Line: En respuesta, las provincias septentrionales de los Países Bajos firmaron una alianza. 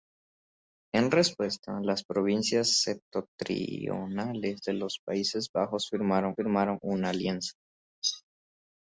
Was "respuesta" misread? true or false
false